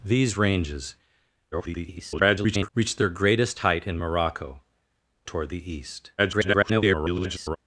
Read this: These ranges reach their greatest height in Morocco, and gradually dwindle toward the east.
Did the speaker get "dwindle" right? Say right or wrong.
wrong